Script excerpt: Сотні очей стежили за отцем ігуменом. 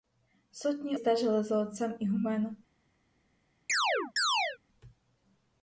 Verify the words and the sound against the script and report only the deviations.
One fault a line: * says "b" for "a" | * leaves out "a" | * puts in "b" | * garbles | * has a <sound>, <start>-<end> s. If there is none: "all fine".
* leaves out "очей"
* has a chirp, 3.7-4.6 s